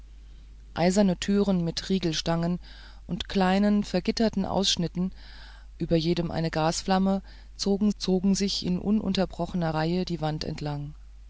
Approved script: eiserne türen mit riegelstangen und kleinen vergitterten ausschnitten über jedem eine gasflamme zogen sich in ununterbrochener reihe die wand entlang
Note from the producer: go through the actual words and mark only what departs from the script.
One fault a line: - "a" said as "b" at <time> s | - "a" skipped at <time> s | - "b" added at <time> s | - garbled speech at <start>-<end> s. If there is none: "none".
- "zogen" added at 8.0 s